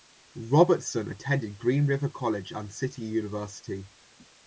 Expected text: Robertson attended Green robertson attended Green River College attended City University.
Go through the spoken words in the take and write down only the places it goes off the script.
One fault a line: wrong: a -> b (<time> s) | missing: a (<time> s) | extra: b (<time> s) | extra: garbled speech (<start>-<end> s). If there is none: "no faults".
missing: robertson attended Green (1.8 s)
wrong: attended -> and (2.5 s)